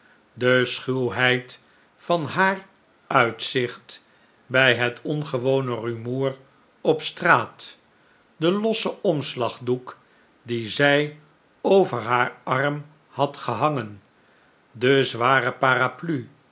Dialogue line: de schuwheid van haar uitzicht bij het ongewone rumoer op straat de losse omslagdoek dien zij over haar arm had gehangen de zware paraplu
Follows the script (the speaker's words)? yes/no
yes